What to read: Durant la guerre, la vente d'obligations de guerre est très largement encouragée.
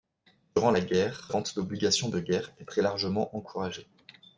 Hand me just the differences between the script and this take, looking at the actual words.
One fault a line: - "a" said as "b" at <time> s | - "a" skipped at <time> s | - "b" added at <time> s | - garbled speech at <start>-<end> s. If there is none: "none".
- "la" skipped at 1.3 s